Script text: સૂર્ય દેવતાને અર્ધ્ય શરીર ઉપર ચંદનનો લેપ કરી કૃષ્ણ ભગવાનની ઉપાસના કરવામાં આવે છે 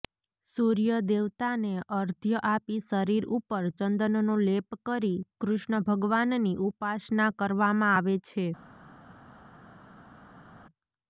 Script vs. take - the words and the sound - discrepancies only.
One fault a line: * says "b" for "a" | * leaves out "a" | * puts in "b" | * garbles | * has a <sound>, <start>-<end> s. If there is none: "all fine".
* puts in "આપી"